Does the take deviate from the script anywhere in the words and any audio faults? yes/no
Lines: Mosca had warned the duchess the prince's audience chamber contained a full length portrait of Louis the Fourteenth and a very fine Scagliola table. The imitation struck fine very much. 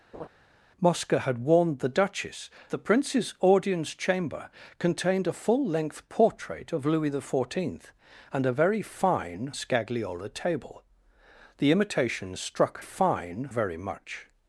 yes